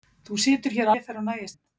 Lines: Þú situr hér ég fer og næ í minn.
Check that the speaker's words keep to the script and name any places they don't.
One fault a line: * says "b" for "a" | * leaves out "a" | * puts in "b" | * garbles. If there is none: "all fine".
all fine